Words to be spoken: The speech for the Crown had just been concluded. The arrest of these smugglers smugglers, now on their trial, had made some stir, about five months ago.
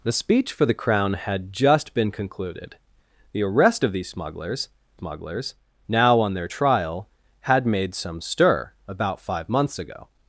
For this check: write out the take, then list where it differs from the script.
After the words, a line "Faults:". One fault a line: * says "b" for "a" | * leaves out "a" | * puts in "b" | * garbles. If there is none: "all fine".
The speech for the Crown had just been concluded. The arrest of these smugglers smugglers, now on their trial, had made some stir, about five months ago.
Faults:
all fine